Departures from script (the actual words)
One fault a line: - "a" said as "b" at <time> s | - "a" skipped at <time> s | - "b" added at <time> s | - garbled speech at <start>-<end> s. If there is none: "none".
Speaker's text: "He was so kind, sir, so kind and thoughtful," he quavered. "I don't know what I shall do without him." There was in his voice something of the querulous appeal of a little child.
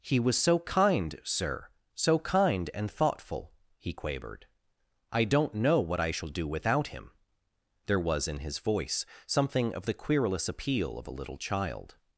none